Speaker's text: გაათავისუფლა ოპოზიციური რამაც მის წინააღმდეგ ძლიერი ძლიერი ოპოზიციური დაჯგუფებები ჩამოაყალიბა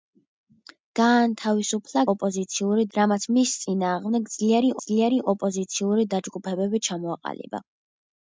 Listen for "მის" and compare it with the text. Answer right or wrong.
right